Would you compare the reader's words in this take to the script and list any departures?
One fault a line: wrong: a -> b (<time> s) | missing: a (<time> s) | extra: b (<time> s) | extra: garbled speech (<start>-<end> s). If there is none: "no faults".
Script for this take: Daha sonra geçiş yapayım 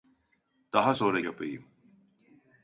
missing: geçiş (1.2 s)